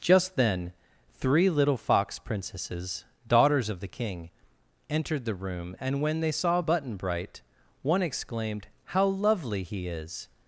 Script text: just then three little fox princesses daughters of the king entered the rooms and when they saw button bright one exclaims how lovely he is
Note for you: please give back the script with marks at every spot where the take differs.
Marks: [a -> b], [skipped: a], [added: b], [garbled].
just then three little fox princesses daughters of the king entered the [rooms -> room] and when they saw button bright one [exclaims -> exclaimed] how lovely he is